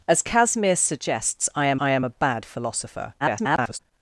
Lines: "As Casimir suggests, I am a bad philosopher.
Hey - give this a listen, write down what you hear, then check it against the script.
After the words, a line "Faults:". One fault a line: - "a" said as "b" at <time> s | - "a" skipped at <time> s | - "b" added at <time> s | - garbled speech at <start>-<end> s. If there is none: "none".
"As Casimir suggests, I am I am a bad philosopher. [garbled]
Faults:
- "I am" added at 1.8 s
- garbled speech at 3.2-3.8 s